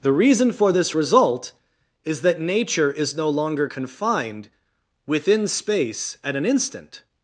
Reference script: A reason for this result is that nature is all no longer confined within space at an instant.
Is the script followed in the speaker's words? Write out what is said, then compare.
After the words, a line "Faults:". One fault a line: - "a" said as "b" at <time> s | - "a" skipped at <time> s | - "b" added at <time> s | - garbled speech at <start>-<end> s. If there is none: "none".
The reason for this result is that nature is no longer confined within space at an instant.
Faults:
- "A" said as "The" at 0.0 s
- "all" skipped at 3.2 s